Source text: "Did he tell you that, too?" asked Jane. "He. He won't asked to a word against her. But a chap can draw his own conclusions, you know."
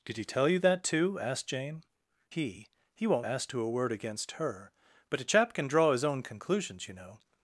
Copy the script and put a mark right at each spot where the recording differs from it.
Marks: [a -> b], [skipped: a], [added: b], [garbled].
"Did he tell you that, too?" asked Jane. "He. He won't asked to a word against her. But a chap can draw his own conclusions, you know."